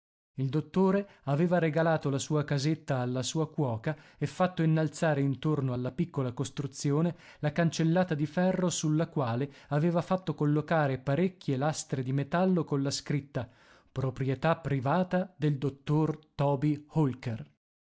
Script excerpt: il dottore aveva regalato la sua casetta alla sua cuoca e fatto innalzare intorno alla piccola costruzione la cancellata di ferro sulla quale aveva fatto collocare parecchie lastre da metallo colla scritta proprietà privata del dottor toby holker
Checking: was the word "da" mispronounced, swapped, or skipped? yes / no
yes